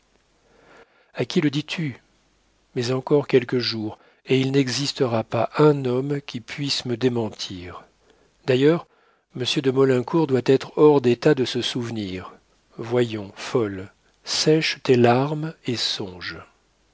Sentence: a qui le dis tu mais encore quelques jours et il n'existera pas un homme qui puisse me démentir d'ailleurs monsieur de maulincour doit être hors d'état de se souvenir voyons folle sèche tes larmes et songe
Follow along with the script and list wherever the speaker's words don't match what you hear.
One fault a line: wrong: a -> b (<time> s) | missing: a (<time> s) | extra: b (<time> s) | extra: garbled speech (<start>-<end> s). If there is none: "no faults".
no faults